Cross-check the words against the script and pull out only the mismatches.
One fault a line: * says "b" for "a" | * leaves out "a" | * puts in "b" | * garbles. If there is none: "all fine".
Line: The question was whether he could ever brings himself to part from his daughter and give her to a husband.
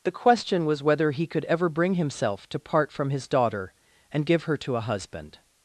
* says "bring" for "brings"